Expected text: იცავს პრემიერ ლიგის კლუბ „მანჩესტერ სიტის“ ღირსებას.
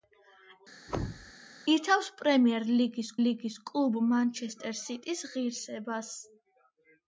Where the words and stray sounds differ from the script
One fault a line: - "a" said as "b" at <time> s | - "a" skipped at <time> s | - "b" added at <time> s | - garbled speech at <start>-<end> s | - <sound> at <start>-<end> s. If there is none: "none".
- thud at 0.9-1.3 s
- "ლიგის" added at 3.3 s